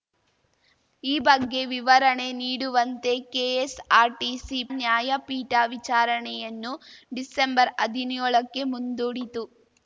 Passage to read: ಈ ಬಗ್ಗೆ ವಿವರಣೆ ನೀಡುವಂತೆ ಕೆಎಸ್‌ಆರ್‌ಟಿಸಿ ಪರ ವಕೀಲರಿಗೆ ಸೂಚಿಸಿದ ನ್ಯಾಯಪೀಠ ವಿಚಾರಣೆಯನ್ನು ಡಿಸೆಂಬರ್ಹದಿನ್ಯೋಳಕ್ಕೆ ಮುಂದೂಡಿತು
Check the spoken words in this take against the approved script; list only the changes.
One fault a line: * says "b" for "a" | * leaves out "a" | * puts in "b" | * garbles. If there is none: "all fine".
* leaves out "ಪರ ವಕೀಲರಿಗೆ ಸೂಚಿಸಿದ"